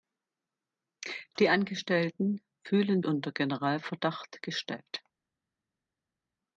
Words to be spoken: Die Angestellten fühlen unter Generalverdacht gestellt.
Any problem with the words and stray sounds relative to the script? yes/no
no